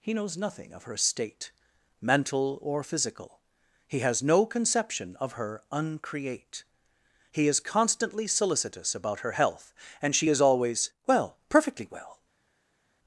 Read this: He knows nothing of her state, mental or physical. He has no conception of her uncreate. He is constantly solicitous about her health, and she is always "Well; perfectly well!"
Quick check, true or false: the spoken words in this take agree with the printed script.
true